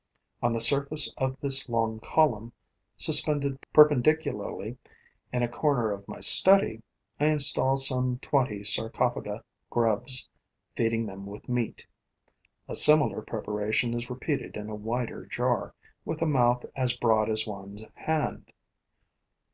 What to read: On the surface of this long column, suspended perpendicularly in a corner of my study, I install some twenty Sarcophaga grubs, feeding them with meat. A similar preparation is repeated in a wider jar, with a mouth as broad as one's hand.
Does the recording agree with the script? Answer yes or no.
yes